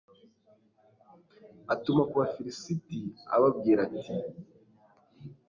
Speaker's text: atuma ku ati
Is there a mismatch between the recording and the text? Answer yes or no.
yes